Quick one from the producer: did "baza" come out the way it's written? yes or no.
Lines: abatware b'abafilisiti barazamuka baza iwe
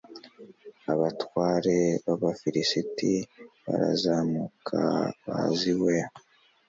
yes